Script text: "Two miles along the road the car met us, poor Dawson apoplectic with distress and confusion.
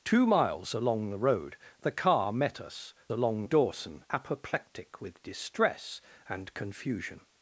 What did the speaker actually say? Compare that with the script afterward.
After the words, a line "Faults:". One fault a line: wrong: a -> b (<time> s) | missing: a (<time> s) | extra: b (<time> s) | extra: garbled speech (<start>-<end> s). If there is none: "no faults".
"Two miles along the road the car met us, along Dawson apoplectic with distress and confusion.
Faults:
wrong: poor -> along (3.1 s)